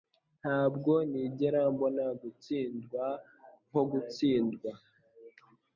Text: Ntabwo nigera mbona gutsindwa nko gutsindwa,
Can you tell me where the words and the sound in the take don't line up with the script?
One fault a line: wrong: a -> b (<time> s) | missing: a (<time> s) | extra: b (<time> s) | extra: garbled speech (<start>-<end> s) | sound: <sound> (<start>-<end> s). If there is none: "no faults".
no faults